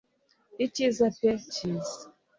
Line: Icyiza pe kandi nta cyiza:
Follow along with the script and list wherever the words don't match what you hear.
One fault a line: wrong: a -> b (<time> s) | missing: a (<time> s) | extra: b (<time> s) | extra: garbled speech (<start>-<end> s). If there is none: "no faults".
missing: kandi nta (1.3 s)